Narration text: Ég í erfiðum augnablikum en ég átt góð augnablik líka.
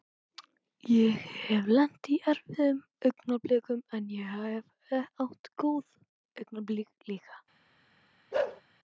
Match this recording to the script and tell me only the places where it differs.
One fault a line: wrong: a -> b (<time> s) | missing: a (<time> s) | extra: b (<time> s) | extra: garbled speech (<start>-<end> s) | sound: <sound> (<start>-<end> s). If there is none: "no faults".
extra: hef lent (1.5 s)
extra: hef (4.9 s)
sound: bark (8.3-8.6 s)